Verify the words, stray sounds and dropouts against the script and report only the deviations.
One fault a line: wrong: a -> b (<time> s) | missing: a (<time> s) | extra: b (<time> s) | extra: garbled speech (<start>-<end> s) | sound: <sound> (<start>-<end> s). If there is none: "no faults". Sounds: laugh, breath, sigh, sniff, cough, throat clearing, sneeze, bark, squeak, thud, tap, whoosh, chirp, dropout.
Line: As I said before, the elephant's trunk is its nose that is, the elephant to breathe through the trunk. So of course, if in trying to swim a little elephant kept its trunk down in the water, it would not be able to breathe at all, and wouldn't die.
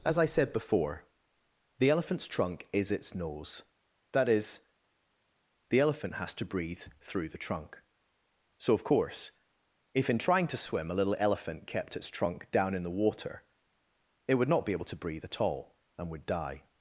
extra: has (6.1 s)
wrong: wouldn't -> would (16.1 s)